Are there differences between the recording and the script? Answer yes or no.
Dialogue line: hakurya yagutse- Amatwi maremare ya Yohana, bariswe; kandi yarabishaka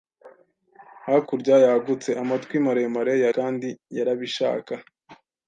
yes